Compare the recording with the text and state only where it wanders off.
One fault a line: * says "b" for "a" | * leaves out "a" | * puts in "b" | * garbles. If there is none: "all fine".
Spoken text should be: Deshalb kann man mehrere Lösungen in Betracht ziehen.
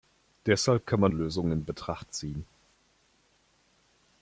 * leaves out "mehrere"